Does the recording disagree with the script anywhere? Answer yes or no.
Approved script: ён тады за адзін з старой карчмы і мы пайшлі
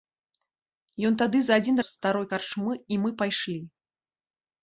no